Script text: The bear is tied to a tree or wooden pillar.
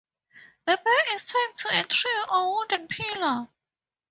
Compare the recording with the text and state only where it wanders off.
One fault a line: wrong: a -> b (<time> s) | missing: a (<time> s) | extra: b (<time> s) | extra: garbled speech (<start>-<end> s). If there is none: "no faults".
no faults